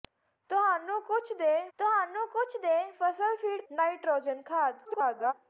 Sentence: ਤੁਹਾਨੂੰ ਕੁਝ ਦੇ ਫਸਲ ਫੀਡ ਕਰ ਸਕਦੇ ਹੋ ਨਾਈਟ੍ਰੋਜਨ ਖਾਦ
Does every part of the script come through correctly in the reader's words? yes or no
no